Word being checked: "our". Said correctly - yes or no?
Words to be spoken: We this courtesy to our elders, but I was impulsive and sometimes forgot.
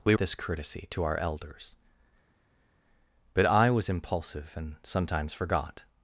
yes